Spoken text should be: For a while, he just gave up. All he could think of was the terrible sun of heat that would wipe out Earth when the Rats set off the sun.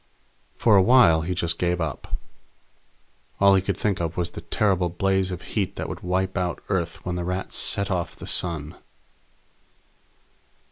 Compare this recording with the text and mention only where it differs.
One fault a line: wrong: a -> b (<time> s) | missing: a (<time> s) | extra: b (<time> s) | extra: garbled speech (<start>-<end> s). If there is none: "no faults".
wrong: sun -> blaze (4.9 s)